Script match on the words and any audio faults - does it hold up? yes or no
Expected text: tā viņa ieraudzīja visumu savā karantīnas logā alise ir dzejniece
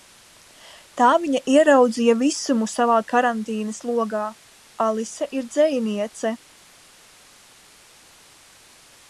yes